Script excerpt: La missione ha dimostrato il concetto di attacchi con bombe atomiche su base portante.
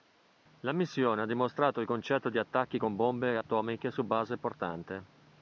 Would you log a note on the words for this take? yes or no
no